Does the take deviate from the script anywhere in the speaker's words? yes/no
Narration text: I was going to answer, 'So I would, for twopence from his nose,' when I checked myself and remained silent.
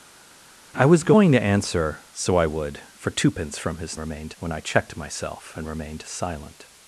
yes